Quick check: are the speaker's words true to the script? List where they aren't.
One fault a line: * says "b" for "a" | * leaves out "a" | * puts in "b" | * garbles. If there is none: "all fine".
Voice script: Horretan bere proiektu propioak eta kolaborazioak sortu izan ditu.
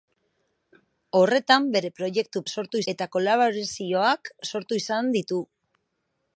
* says "sortu" for "propioak"